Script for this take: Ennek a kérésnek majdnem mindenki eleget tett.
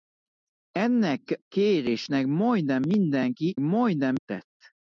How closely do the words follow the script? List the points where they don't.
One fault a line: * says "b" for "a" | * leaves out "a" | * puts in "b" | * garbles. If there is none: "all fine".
* leaves out "a"
* says "majdnem" for "eleget"